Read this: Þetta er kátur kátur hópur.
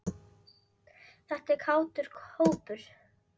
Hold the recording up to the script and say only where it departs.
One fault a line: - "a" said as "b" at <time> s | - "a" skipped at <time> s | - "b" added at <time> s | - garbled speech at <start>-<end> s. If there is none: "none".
- "kátur" skipped at 2.1 s